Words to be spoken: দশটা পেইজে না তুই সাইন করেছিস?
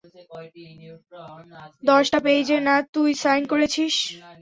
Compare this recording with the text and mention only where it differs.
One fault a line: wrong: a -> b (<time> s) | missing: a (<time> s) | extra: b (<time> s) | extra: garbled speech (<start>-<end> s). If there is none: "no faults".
no faults